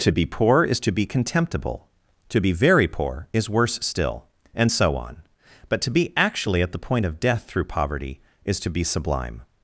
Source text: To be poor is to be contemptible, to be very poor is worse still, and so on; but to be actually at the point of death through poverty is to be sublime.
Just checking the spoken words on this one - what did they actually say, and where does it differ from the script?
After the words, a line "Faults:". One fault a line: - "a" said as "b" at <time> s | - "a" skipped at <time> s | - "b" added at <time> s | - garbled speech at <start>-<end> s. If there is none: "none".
To be poor is to be contemptible, to be very poor is worse still, and so on; but to be actually at the point of death through poverty is to be sublime.
Faults:
none